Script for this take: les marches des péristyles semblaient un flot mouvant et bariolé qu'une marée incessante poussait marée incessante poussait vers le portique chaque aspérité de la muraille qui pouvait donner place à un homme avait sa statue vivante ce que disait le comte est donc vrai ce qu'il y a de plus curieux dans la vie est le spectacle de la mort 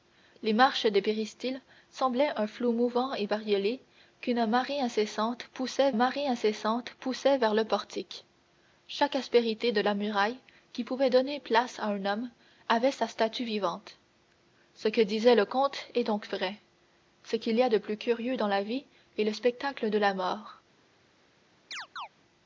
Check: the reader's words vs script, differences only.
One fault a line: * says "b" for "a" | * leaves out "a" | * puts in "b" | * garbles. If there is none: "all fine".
all fine